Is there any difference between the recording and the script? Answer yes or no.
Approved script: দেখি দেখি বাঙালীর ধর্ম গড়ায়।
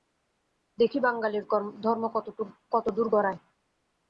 yes